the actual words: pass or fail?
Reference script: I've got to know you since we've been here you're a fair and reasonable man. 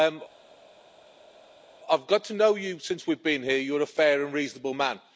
pass